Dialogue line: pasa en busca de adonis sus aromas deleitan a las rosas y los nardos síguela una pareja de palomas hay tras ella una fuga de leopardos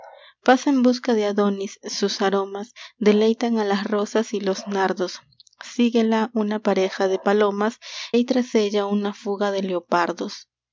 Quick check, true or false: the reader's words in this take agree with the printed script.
true